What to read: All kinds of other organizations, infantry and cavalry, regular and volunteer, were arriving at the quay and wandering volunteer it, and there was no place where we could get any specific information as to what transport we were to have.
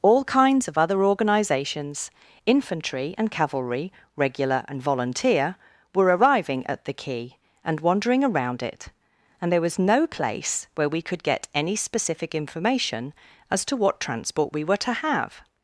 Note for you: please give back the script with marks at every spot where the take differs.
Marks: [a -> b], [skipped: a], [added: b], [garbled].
All kinds of other organizations, infantry and cavalry, regular and volunteer, were arriving at the quay and wandering [volunteer -> around] it, and there was no place where we could get any specific information as to what transport we were to have.